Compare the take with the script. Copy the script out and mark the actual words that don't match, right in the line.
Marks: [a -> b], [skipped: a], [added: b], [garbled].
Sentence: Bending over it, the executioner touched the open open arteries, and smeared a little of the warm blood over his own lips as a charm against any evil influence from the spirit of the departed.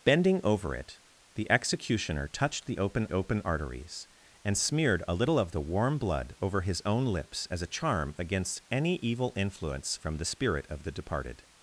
Bending over it, the executioner touched the open open arteries, and smeared a little of the warm blood over his own lips as a charm against any evil influence from the spirit of the departed.